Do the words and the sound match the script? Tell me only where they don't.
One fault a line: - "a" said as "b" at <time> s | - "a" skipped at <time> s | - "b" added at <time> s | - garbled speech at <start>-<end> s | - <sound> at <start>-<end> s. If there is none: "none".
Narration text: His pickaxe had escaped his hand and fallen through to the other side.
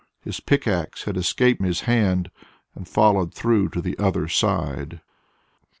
none